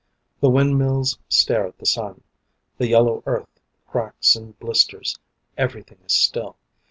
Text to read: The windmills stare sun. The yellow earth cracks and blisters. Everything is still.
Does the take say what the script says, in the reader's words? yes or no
no